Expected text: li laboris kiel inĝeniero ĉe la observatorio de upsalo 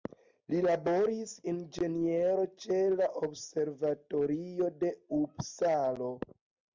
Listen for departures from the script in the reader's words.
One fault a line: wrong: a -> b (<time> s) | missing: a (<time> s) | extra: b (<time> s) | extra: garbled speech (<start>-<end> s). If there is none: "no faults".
missing: kiel (1.3 s)